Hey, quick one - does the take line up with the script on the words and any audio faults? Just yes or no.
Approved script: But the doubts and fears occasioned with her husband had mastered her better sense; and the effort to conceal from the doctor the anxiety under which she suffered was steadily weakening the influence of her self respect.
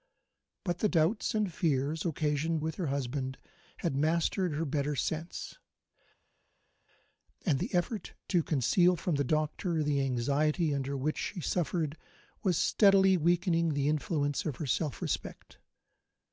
yes